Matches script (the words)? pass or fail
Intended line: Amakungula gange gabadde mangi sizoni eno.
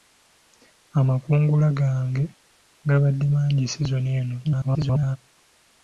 fail